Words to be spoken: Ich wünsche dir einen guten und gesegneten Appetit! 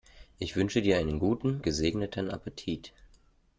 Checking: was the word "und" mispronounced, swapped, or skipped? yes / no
yes